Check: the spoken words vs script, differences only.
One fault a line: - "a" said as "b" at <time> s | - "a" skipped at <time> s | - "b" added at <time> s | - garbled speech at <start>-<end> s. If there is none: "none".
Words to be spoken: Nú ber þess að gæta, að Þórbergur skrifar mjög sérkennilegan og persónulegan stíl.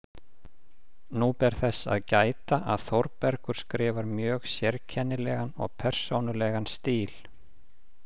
none